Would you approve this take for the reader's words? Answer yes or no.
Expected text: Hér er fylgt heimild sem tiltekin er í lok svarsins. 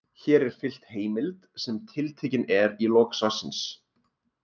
yes